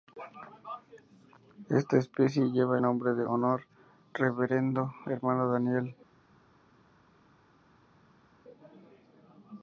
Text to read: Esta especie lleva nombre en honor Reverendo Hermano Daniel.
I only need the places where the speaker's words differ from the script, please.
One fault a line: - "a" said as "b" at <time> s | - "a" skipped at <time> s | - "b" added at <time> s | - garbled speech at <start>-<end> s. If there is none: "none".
none